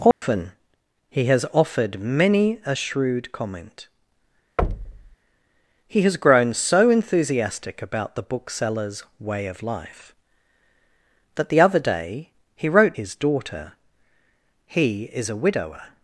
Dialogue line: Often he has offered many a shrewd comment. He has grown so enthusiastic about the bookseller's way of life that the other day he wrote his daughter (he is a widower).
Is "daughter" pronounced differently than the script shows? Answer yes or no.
no